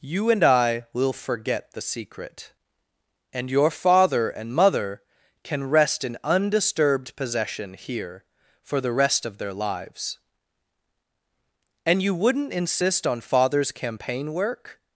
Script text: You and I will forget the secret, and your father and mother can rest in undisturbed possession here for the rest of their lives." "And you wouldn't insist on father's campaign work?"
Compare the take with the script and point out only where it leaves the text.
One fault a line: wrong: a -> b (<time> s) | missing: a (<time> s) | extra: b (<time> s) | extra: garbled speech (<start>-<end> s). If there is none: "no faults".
no faults